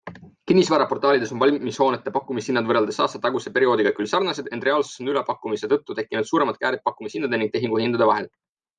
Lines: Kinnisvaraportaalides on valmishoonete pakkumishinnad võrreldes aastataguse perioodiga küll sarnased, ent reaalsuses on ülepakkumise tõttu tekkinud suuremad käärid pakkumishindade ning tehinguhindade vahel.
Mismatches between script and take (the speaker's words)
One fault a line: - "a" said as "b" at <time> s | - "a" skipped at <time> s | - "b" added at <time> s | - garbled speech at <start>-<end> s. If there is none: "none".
none